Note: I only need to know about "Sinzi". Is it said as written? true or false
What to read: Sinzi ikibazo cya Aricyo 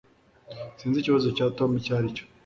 true